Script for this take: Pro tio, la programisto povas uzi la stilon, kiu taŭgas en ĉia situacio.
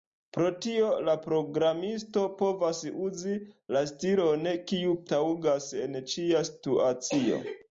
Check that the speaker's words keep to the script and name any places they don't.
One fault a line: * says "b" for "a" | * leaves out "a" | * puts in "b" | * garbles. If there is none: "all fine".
all fine